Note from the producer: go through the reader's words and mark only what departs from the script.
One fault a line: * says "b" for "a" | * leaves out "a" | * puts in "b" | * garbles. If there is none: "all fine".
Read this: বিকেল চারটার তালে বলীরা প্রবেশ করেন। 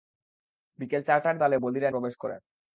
all fine